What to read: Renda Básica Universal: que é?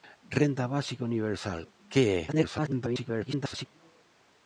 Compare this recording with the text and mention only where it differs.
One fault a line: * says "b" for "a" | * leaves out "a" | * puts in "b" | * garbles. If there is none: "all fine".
* garbles